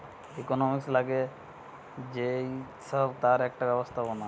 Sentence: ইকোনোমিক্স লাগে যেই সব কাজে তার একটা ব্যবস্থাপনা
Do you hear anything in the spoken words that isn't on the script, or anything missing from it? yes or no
yes